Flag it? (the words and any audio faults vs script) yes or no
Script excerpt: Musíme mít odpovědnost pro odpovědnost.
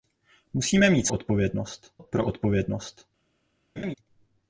yes